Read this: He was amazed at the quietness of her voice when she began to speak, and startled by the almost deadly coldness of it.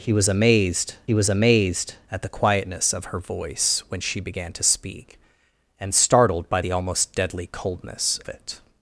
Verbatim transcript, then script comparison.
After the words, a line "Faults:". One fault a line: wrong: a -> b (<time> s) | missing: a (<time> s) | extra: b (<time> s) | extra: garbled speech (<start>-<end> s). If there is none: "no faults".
He was amazed he was amazed at the quietness of her voice when she began to speak, and startled by the almost deadly coldness it.
Faults:
extra: he was amazed (1.0 s)
missing: of (8.2 s)